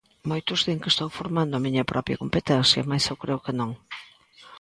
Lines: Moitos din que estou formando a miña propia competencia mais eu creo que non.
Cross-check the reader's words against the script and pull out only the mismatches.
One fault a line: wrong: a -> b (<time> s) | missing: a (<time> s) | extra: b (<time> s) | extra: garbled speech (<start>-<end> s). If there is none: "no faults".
no faults